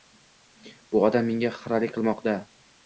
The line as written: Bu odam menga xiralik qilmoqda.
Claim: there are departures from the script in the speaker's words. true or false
false